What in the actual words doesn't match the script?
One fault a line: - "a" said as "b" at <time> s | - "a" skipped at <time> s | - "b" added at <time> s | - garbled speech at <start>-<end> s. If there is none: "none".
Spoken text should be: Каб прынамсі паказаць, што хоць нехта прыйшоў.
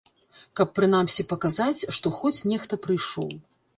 none